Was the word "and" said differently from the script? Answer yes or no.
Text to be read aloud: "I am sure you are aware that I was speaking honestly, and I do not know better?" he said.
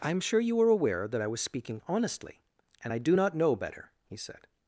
no